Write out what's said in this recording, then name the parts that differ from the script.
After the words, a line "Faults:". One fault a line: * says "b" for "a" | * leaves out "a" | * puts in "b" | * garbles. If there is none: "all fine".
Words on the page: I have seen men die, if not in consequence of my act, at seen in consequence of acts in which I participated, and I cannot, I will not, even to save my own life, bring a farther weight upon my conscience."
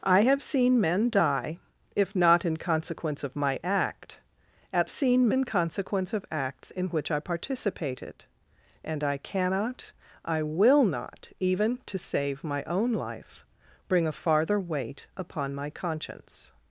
I have seen men die, if not in consequence of my act, at seen in consequence of acts in which I participated, and I cannot, I will not, even to save my own life, bring a farther weight upon my conscience."
Faults:
all fine